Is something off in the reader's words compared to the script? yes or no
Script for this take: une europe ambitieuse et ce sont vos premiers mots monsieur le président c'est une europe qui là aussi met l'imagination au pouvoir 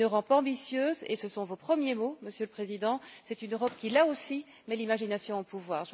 no